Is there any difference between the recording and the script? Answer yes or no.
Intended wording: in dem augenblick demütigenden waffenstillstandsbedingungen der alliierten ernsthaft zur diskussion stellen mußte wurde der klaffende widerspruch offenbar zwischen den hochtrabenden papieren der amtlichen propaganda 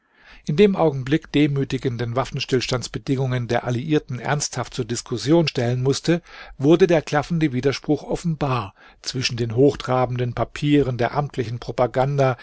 no